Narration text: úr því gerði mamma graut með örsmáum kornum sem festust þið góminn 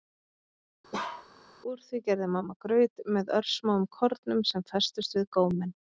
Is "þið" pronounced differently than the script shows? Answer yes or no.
yes